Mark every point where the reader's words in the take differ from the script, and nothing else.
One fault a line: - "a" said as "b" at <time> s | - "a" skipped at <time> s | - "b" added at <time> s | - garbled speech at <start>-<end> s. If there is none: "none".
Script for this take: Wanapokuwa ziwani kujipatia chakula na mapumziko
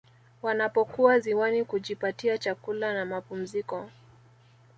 none